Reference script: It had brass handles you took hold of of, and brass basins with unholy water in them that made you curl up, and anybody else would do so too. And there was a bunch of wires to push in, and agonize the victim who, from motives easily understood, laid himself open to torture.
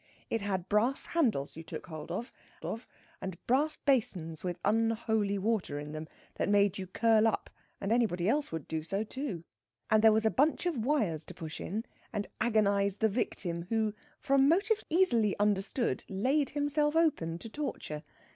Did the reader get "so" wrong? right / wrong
right